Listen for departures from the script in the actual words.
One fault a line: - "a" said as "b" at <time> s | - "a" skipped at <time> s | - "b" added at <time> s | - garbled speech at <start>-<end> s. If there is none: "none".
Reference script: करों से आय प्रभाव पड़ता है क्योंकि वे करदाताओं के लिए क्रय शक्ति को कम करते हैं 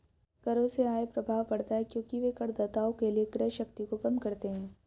none